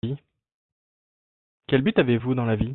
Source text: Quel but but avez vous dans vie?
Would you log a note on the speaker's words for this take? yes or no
yes